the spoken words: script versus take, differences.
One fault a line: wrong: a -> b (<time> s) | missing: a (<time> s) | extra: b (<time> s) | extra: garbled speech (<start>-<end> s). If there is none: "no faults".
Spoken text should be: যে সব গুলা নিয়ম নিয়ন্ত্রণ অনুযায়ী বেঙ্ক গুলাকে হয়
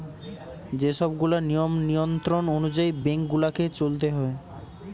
extra: চলতে (3.7 s)